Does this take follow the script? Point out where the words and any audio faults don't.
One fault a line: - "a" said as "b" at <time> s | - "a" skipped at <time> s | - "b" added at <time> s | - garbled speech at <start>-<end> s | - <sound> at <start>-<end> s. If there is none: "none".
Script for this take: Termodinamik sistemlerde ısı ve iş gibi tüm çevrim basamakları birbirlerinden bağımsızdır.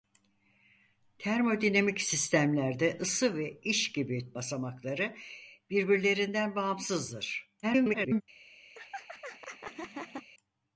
- "tüm çevrim" skipped at 4.3 s
- garbled speech at 7.6-8.2 s
- laugh at 8.7-10.3 s